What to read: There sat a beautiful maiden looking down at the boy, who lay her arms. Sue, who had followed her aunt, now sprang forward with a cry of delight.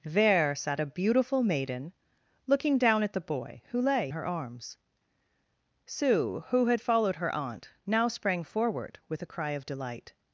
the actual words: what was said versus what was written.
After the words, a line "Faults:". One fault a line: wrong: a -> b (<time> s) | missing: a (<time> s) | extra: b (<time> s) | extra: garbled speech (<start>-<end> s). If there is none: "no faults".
There sat a beautiful maiden looking down at the boy, who lay her arms. Sue, who had followed her aunt, now sprang forward with a cry of delight.
Faults:
no faults